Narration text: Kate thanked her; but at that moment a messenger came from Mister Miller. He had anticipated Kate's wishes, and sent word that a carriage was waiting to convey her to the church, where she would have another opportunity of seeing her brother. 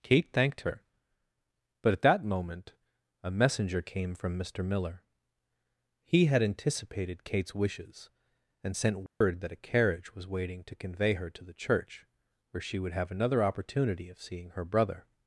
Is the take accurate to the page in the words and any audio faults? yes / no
no